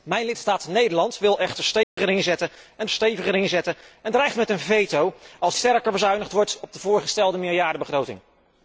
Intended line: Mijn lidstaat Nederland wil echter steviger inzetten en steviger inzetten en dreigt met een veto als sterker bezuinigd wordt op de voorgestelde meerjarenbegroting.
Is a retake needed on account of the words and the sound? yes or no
yes